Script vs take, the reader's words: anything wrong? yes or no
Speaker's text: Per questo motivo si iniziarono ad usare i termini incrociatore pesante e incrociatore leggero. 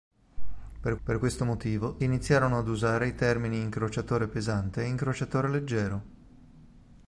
yes